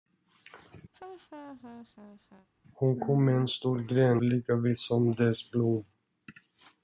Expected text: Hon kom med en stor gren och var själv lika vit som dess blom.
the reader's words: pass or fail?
fail